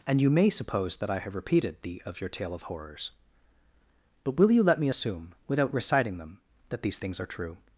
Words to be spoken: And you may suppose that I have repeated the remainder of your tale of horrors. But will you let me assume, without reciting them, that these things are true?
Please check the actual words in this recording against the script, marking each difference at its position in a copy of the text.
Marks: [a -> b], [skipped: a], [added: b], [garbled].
And you may suppose that I have repeated the [skipped: remainder] of your tale of horrors. But will you let me assume, without reciting them, that these things are true?